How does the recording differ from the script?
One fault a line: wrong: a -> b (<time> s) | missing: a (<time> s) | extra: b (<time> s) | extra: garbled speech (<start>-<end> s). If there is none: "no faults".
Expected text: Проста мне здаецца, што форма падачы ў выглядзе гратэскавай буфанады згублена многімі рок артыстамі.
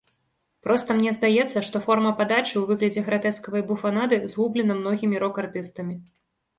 no faults